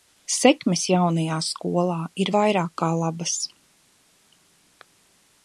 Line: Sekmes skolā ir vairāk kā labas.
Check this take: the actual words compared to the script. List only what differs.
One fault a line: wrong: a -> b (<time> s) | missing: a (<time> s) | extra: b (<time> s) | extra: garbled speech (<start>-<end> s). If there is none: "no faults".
extra: jaunajā (0.9 s)